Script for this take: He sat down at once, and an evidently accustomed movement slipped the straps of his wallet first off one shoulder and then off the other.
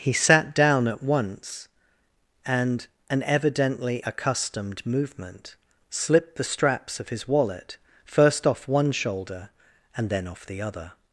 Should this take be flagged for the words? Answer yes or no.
no